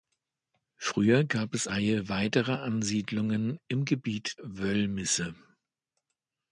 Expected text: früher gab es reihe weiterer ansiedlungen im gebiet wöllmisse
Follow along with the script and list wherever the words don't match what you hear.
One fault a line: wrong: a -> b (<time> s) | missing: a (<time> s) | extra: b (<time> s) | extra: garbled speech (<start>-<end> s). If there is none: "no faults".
no faults